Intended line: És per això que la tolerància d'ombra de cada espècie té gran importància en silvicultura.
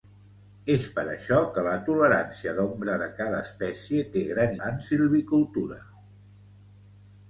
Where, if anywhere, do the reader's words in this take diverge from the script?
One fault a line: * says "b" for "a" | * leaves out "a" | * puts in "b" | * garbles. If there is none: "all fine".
* leaves out "importància"